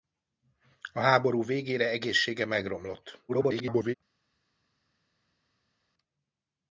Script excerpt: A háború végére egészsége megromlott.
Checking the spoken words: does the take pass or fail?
fail